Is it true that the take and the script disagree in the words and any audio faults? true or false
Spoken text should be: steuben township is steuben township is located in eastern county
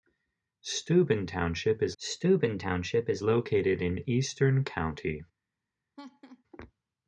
true